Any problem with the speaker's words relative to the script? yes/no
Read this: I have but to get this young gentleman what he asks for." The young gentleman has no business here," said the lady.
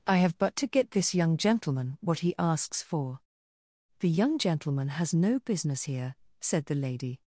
no